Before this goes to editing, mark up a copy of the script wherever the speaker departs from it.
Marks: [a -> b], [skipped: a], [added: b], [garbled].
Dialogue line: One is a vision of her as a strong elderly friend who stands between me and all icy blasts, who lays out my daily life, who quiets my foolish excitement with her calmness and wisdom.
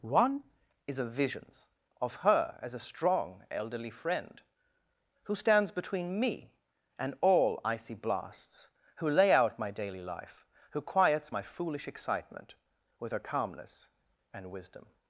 One is a [vision -> visions] of her as a strong elderly friend who stands between me and all icy blasts, who [lays -> lay] out my daily life, who quiets my foolish excitement with her calmness and wisdom.